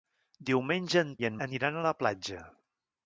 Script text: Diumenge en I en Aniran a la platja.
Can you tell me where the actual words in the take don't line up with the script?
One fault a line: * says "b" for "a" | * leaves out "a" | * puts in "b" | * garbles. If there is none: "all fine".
all fine